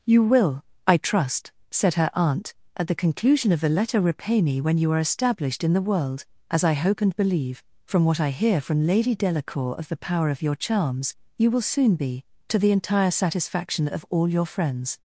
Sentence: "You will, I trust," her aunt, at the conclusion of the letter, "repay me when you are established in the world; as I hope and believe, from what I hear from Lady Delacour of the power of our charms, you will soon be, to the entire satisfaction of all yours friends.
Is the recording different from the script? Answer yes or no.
yes